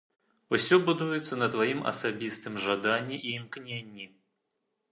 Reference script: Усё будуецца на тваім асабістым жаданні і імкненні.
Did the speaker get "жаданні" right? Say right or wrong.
right